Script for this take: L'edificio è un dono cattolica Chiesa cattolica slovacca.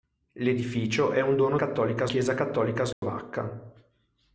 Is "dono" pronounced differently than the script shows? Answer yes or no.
no